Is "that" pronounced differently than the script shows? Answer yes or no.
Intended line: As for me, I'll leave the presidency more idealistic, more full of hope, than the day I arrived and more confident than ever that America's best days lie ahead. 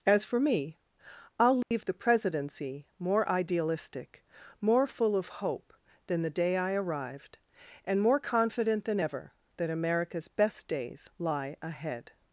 no